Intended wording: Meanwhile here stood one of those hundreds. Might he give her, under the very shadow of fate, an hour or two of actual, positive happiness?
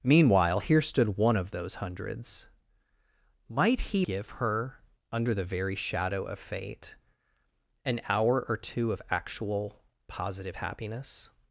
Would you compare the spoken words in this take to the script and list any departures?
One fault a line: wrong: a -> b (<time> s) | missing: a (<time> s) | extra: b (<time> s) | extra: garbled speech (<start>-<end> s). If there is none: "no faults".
no faults